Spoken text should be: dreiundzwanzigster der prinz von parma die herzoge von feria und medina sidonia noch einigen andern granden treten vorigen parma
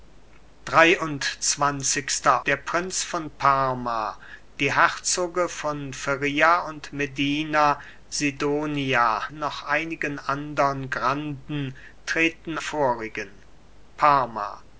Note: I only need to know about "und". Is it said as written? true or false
true